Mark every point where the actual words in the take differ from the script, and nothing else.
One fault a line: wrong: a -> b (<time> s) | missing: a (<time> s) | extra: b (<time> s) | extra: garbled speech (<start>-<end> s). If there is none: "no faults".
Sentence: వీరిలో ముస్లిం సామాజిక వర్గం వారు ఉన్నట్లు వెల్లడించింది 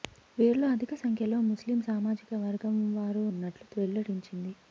extra: అధిక సంఖ్యలో (0.7 s)